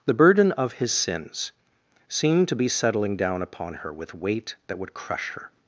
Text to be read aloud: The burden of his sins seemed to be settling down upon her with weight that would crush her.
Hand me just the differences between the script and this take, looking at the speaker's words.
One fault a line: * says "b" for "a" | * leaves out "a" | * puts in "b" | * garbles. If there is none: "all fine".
all fine